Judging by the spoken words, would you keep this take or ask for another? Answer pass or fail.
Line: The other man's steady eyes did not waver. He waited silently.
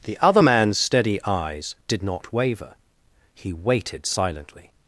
pass